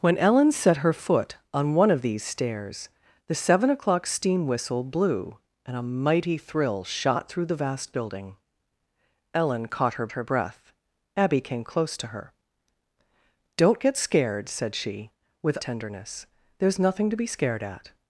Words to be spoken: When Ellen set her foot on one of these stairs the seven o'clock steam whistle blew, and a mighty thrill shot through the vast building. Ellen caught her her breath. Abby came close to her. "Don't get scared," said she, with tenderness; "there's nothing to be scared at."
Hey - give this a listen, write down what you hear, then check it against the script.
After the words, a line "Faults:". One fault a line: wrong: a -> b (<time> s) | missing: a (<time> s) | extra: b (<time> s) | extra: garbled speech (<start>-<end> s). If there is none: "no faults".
When Ellen set her foot on one of these stairs the seven o'clock steam whistle blew, and a mighty thrill shot through the vast building. Ellen caught her her breath. Abby came close to her. "Don't get scared," said she, with tenderness; "there's nothing to be scared at."
Faults:
no faults